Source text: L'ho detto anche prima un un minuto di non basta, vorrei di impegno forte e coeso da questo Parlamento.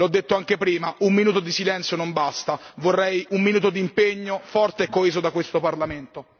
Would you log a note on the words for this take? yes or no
yes